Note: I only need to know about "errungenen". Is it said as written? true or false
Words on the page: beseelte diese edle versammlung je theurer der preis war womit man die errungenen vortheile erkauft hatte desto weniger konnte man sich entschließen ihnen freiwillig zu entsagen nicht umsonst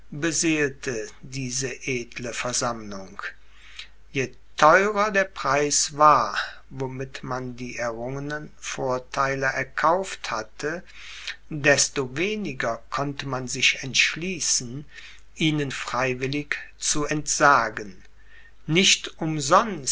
true